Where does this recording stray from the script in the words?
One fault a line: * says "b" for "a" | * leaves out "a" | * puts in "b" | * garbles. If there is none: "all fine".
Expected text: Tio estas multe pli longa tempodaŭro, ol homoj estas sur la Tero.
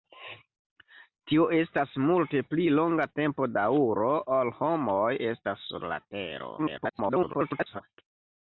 * garbles